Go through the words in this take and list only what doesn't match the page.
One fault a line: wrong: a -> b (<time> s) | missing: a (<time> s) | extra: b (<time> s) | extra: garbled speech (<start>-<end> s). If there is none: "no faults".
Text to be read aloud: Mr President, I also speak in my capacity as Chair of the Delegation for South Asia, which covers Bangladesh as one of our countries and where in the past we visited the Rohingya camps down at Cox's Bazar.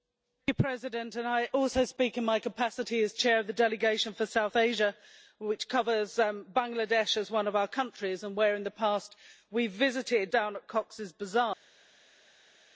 missing: the Rohingya camps (10.3 s)